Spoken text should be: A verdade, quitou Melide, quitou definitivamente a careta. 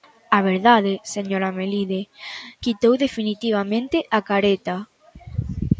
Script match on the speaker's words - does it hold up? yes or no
no